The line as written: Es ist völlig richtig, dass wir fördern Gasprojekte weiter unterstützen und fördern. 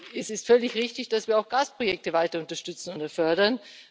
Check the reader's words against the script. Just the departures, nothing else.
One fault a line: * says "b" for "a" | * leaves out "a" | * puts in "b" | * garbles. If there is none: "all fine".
* says "auch" for "fördern"